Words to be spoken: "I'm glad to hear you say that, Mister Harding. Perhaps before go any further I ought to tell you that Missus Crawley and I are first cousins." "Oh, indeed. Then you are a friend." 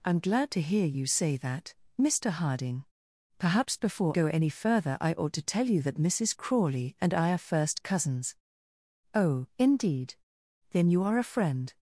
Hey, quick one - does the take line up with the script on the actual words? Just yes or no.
yes